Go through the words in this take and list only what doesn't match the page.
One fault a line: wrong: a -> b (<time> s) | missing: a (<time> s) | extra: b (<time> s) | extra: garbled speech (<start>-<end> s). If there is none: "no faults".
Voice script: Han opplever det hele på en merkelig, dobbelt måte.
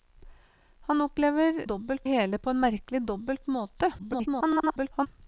wrong: det -> dobbelt (1.6 s)
extra: garbled speech (4.0-5.1 s)